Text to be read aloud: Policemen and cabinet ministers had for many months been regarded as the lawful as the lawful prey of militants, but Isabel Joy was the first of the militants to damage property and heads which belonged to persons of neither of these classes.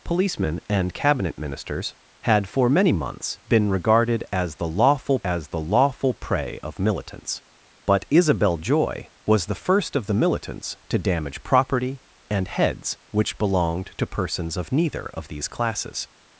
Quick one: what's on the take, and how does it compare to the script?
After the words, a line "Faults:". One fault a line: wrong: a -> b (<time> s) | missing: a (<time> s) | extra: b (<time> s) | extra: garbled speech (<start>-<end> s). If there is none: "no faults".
Policemen and cabinet ministers had for many months been regarded as the lawful as the lawful prey of militants, but Isabel Joy was the first of the militants to damage property and heads which belonged to persons of neither of these classes.
Faults:
no faults